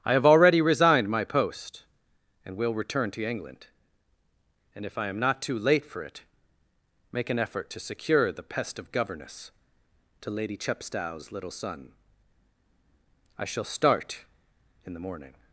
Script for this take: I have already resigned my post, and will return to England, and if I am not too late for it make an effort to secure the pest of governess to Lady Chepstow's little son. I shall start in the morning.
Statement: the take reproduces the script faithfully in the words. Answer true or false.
true